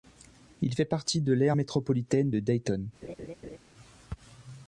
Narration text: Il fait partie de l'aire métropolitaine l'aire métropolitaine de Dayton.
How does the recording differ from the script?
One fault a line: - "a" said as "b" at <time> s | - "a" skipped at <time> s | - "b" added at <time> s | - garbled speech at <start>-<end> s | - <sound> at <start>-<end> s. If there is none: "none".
- "l'aire métropolitaine" skipped at 2.3 s
- laugh at 3.0-3.6 s